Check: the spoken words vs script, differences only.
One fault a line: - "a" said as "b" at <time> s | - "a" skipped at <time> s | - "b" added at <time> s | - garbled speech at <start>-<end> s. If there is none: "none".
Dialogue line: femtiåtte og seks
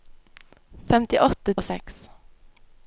none